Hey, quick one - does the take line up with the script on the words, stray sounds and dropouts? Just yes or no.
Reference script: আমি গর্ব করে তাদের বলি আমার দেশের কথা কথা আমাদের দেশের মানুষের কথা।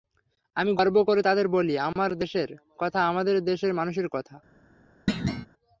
no